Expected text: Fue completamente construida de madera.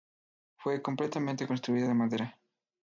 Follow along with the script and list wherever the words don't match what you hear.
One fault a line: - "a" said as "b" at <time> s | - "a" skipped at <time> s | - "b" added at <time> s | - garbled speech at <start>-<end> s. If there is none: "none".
none